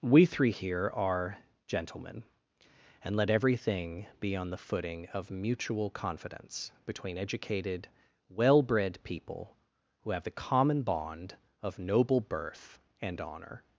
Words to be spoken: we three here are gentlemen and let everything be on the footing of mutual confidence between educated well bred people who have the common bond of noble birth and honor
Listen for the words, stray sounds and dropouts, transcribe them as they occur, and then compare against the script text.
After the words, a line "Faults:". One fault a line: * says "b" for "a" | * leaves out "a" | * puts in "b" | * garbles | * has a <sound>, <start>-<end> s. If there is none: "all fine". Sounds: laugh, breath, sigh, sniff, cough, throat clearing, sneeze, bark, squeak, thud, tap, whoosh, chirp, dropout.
we three here are gentlemen and let everything be on the footing of mutual confidence between educated well bred people who have the common bond of noble birth and honor
Faults:
all fine